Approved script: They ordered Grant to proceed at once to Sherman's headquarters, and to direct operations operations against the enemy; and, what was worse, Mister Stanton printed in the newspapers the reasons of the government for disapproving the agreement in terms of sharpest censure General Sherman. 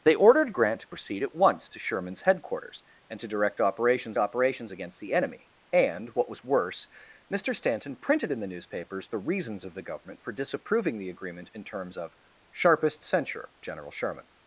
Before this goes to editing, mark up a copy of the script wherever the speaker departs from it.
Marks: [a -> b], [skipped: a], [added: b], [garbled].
They ordered Grant to proceed at once to Sherman's headquarters, and to direct operations operations against the enemy; and, what was worse, Mister Stanton printed in the newspapers the reasons of the government for disapproving the agreement in terms of sharpest censure General Sherman.